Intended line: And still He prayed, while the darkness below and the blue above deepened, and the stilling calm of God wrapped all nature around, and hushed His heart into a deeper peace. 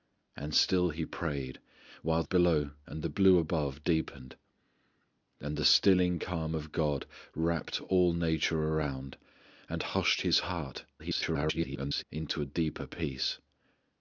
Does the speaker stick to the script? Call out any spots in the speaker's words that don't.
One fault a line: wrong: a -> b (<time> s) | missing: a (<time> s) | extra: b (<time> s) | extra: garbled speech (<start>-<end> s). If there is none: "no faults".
missing: the darkness (2.2 s)
extra: garbled speech (11.0-12.0 s)